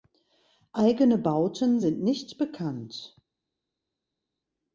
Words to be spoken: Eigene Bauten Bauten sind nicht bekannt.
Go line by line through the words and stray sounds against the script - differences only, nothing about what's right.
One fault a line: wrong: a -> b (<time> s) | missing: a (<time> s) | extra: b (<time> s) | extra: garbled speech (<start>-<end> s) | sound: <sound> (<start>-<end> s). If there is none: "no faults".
missing: Bauten (1.8 s)